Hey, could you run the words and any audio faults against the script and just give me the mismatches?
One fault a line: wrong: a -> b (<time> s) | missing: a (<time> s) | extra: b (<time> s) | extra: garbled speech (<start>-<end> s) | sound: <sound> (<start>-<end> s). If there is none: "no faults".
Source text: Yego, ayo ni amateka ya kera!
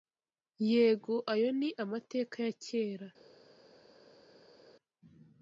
no faults